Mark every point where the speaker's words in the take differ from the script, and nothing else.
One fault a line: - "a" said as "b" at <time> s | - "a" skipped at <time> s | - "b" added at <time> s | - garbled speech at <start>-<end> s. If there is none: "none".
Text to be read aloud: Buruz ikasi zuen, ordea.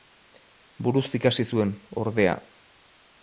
none